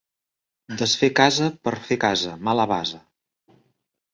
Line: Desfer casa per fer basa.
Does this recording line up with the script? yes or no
no